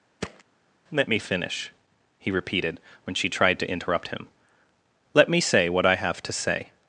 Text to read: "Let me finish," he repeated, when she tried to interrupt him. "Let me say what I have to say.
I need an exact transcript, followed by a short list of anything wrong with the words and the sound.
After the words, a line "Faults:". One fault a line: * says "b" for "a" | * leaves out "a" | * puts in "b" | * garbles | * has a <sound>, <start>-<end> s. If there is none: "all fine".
"Let me finish," he repeated, when she tried to interrupt him. "Let me say what I have to say.
Faults:
* has a thud, 0.2-0.4 s